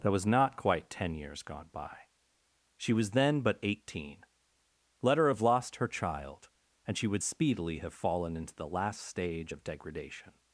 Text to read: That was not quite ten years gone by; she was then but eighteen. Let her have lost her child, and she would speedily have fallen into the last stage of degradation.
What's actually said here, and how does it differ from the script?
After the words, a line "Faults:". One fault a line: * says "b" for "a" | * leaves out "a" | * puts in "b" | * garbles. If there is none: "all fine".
That was not quite ten years gone by; she was then but eighteen. Let her have lost her child, and she would speedily have fallen into the last stage of degradation.
Faults:
all fine